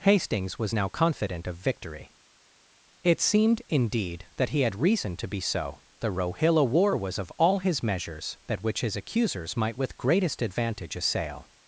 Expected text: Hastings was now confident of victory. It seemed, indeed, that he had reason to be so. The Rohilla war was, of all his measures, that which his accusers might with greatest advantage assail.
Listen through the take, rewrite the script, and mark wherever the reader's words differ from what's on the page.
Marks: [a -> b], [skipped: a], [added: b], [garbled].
Hastings was now confident of victory. It seemed, indeed, that he had reason to be so. The Rohilla war was, of all his measures, that which his accusers might with greatest advantage assail.